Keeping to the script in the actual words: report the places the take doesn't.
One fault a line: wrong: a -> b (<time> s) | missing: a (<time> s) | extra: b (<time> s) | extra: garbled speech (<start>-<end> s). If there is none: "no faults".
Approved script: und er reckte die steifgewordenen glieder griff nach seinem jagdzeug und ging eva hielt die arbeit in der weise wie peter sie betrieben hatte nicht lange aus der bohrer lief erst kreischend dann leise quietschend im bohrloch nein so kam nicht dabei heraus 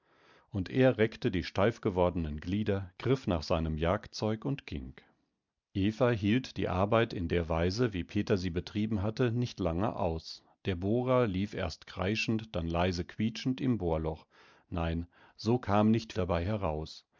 no faults